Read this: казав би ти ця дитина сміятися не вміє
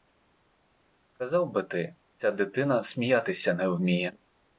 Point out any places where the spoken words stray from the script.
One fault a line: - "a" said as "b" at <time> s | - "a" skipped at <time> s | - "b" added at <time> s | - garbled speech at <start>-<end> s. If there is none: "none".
none